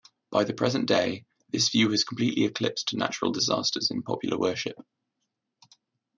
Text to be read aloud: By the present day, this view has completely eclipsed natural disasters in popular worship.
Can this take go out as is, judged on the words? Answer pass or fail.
pass